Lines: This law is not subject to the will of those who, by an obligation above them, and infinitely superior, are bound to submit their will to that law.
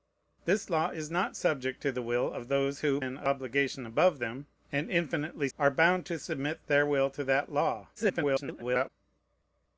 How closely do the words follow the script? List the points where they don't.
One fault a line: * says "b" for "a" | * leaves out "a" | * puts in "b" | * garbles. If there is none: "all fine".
* leaves out "by"
* leaves out "superior"
* garbles